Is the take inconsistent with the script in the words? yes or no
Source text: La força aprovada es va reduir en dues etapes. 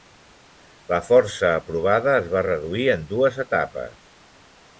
no